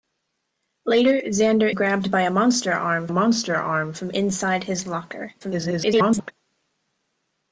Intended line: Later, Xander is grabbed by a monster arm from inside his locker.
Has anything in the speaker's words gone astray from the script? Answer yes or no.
yes